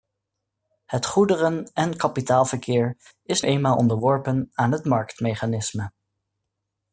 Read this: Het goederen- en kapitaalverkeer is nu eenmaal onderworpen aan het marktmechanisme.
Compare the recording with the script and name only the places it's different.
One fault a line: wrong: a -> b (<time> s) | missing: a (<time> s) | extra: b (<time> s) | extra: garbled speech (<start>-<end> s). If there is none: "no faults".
missing: nu (3.4 s)